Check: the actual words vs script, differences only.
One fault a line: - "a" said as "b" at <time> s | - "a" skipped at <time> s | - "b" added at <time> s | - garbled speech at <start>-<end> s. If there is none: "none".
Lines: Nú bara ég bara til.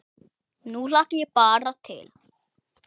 - "bara" said as "hlakka" at 0.9 s